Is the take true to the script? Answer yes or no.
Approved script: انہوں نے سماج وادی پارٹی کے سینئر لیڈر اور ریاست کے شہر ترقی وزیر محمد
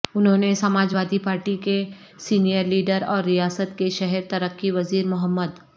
yes